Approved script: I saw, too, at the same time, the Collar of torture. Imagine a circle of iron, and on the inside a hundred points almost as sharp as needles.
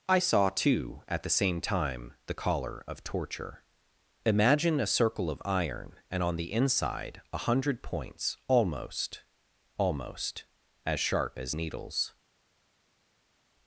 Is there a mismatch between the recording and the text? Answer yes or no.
yes